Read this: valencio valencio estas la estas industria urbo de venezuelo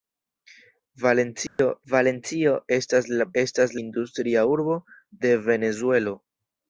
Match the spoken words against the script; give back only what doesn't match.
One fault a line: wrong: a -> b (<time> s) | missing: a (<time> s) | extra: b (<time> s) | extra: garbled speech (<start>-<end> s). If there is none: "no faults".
no faults